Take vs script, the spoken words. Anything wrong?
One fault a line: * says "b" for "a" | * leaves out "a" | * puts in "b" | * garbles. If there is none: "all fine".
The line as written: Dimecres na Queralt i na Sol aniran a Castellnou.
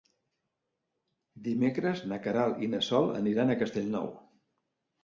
all fine